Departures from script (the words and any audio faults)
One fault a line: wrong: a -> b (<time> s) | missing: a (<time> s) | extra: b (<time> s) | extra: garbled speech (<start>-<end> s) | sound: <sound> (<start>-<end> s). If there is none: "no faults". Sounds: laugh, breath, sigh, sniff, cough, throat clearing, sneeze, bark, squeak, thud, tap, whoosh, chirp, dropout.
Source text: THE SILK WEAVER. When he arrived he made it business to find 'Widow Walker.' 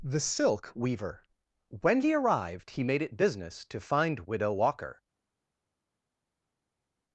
no faults